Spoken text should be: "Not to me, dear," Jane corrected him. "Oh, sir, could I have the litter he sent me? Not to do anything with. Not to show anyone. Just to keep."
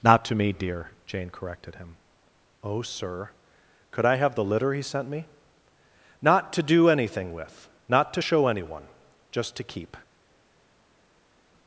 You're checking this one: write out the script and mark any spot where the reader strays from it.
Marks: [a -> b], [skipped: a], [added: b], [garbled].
"Not to me, dear," Jane corrected him. "Oh, sir, could I have the litter he sent me? Not to do anything with. Not to show anyone. Just to keep."